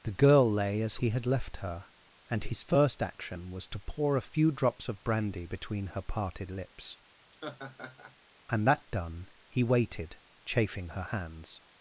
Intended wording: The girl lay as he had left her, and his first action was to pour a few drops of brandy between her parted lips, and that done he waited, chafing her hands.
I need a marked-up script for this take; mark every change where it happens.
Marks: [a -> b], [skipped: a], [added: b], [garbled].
The girl lay as he had left her, and his first action was to pour a few drops of brandy between her parted lips, and that done he waited, chafing her hands.